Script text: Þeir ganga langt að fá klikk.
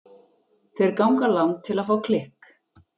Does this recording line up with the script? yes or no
no